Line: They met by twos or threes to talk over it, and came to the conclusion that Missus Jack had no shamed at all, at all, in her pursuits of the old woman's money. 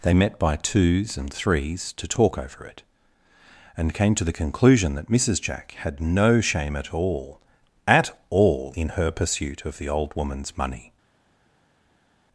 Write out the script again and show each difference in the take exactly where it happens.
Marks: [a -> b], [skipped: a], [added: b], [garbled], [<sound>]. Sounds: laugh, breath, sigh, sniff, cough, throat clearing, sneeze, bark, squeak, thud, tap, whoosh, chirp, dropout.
They met by twos [or -> and] threes to talk over it, and came to the conclusion that Missus Jack had no [shamed -> shame] at all, at all, in her [pursuits -> pursuit] of the old woman's money.